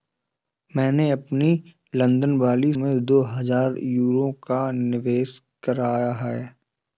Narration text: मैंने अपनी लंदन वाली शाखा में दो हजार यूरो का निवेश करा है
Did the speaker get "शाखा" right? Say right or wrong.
wrong